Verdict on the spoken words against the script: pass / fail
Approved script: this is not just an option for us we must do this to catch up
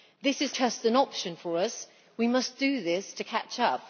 fail